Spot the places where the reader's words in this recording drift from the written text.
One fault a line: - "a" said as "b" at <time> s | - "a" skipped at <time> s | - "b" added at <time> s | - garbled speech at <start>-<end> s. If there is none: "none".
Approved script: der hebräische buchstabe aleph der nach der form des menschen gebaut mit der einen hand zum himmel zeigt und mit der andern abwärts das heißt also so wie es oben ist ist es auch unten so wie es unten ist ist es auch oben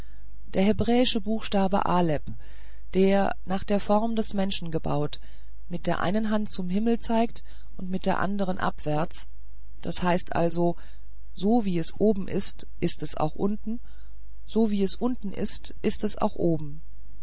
none